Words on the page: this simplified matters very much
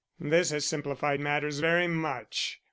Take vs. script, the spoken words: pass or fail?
fail